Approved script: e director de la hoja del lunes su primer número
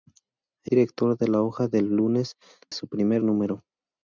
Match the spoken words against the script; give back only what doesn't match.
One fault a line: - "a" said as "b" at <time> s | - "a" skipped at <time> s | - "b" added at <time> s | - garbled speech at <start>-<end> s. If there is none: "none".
none